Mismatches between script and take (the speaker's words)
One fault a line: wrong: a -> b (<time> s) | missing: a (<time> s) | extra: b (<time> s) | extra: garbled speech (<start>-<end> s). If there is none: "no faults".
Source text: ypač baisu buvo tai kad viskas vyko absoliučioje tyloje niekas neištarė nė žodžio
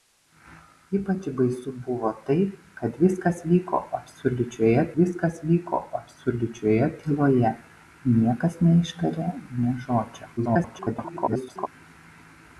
extra: viskas vyko absoliučioje (5.0 s)
extra: garbled speech (10.4-11.7 s)